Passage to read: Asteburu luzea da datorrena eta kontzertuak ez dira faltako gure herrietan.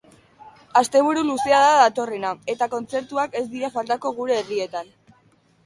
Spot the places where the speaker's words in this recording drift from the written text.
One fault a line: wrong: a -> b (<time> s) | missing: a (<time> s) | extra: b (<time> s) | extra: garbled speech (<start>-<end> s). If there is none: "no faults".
no faults